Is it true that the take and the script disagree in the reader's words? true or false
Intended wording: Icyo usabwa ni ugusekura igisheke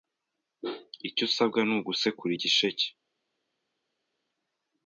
false